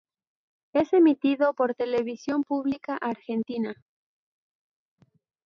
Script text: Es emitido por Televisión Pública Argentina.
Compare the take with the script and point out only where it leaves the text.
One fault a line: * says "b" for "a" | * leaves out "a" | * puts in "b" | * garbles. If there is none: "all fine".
all fine